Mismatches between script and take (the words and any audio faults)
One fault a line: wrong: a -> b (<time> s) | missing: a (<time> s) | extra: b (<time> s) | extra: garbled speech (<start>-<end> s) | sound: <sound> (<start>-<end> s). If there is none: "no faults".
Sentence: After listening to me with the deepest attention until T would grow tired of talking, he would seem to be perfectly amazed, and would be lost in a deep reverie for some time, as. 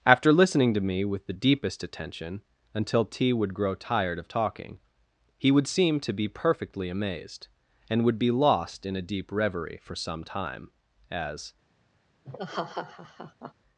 sound: laugh (12.2-13.5 s)